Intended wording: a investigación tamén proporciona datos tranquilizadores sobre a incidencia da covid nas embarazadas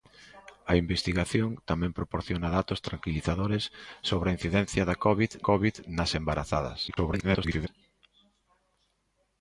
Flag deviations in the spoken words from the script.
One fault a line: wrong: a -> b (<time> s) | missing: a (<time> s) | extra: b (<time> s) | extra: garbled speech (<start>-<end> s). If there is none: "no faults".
extra: covid (5.5 s)
extra: garbled speech (6.9-7.7 s)